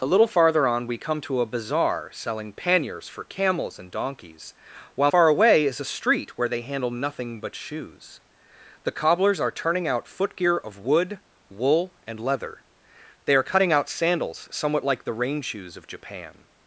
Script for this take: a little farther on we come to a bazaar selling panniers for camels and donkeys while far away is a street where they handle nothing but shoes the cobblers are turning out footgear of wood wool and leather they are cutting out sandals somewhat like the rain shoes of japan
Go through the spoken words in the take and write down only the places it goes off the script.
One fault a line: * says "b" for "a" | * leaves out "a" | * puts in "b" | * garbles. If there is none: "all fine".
all fine